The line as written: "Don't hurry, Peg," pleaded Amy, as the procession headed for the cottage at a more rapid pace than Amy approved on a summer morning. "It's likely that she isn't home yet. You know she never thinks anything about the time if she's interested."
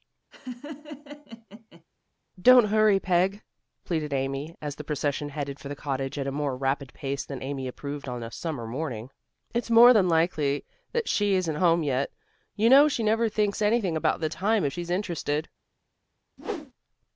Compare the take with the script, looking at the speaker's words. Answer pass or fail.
fail